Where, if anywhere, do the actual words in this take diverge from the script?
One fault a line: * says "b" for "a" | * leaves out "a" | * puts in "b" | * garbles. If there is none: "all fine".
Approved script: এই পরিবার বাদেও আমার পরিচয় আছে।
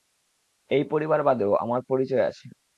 all fine